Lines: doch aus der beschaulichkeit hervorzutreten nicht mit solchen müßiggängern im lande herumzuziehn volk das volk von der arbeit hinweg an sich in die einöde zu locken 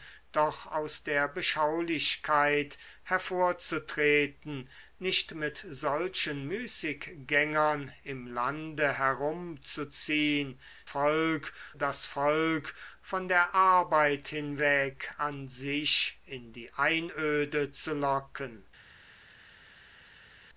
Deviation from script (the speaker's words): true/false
false